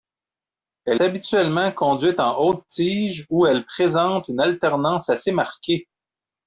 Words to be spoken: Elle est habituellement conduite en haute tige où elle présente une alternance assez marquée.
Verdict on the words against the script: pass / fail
fail